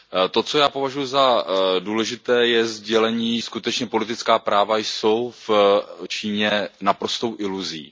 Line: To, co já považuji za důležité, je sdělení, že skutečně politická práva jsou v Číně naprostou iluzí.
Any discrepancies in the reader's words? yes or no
yes